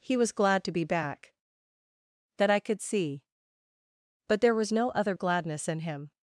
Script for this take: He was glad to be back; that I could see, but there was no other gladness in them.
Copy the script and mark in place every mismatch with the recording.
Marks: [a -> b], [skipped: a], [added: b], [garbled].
He was glad to be back; that I could see, but there was no other gladness in [them. -> him]